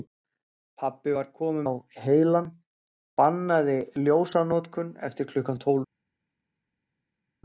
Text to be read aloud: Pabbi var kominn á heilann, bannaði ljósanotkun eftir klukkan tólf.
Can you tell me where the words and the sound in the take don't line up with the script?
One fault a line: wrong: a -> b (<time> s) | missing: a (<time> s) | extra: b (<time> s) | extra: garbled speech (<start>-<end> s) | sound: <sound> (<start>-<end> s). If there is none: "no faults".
no faults